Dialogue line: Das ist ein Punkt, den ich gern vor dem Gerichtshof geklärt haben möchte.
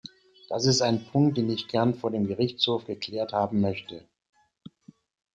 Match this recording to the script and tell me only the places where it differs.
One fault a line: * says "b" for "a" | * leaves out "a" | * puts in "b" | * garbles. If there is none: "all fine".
all fine